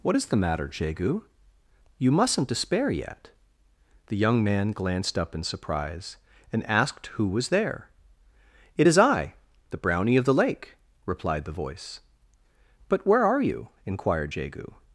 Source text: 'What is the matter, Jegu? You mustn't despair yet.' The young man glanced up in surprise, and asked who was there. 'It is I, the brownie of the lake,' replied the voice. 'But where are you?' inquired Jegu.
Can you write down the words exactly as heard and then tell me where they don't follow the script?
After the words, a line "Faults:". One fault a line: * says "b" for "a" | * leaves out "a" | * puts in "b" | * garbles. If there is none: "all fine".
'What is the matter, Jegu? You mustn't despair yet.' The young man glanced up in surprise, and asked who was there. 'It is I, the brownie of the lake,' replied the voice. 'But where are you?' inquired Jegu.
Faults:
all fine